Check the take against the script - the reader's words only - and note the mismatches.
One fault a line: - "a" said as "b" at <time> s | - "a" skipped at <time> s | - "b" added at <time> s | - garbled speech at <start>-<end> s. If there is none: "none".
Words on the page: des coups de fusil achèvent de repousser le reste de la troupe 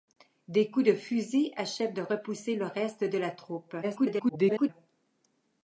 - garbled speech at 3.8-4.7 s